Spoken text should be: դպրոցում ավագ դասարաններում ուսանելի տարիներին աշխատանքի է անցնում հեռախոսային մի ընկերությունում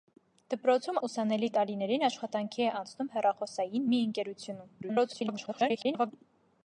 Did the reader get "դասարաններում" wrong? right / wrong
wrong